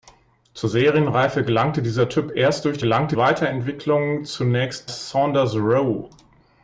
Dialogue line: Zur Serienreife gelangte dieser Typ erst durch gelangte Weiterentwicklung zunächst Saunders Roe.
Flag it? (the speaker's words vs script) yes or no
no